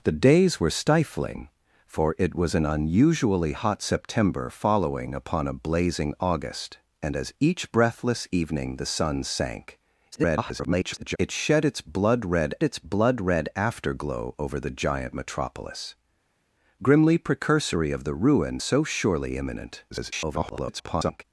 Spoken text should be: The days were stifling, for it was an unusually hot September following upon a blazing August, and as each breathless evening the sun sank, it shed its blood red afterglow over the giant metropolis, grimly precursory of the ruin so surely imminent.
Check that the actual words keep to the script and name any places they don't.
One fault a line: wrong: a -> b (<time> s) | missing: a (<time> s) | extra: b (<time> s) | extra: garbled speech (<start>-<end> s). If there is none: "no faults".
extra: garbled speech (10.1-11.2 s)
extra: its blood red (12.6 s)
extra: garbled speech (19.9-21.2 s)